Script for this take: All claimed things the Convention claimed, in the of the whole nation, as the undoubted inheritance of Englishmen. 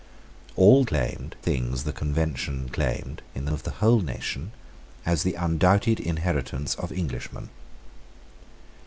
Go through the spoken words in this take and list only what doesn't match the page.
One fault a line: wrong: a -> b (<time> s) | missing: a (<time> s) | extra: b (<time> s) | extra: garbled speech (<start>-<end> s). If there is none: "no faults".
no faults